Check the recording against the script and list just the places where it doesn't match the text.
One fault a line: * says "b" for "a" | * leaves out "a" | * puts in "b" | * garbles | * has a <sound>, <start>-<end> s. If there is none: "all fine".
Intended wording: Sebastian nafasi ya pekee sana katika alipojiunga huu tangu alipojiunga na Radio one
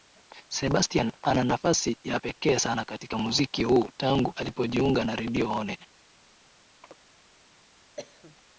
* puts in "ana"
* says "muziki" for "alipojiunga"
* has a chirp, 6.8-7.0 s
* has a cough, 8.0-8.4 s